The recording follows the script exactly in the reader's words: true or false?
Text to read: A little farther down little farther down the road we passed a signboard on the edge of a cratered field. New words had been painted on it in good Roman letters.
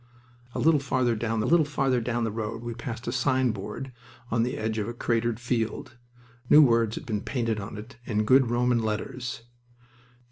true